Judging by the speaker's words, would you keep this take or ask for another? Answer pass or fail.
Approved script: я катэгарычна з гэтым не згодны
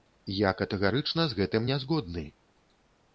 pass